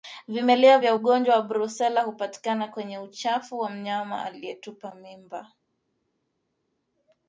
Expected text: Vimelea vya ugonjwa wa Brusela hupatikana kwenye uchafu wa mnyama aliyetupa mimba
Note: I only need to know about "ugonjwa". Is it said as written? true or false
true